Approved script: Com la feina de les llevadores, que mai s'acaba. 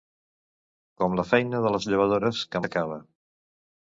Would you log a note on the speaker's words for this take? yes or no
yes